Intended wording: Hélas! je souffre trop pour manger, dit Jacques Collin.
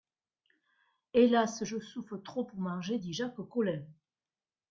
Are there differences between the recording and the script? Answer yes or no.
no